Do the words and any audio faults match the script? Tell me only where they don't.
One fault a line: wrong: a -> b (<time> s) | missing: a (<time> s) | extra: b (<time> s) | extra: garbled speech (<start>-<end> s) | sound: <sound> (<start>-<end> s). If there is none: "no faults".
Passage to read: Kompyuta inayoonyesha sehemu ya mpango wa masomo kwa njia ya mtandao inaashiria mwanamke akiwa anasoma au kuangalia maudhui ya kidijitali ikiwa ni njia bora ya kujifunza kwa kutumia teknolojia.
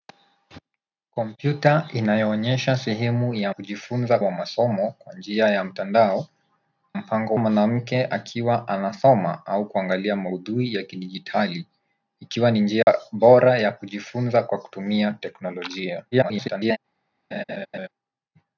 wrong: mpango -> kujifunza (3.5 s)
wrong: inaashiria -> mpango (6.9 s)
sound: dropout (12.8-12.9 s)
extra: garbled speech (16.1-16.8 s)
sound: laugh (17.3-17.9 s)